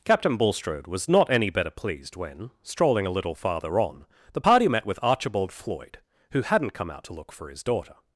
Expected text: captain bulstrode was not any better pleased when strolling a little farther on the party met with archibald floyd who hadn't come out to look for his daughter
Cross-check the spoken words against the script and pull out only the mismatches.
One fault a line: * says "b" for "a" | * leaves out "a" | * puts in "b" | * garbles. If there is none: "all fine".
all fine